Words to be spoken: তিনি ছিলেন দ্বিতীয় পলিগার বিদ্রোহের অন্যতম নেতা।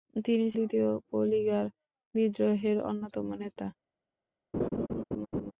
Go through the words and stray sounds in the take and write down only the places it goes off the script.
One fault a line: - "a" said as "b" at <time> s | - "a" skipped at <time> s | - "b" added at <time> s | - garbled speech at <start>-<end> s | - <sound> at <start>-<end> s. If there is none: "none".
- "ছিলেন" skipped at 0.5 s
- laugh at 4.5-5.5 s